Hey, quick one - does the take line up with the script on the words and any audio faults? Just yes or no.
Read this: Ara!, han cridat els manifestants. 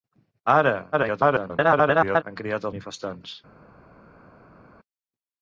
no